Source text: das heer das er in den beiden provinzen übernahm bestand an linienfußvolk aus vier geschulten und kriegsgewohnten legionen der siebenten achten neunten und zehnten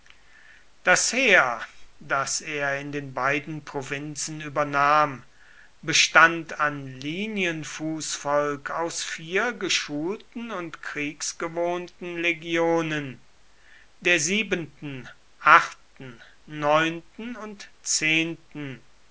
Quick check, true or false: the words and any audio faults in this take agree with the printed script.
true